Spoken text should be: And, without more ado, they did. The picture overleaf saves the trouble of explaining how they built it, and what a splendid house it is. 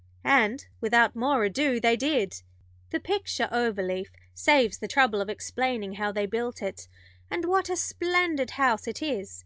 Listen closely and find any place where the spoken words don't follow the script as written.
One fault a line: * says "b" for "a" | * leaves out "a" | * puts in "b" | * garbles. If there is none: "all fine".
all fine